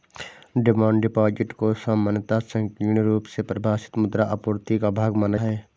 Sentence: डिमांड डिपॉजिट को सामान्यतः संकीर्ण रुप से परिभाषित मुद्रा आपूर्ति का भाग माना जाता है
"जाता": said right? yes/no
no